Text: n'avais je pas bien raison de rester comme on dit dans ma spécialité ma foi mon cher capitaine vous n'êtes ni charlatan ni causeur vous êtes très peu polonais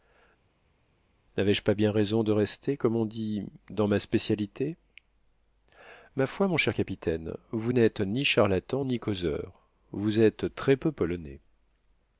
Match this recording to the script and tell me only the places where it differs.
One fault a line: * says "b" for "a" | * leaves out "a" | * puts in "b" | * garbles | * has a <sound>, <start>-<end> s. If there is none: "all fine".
all fine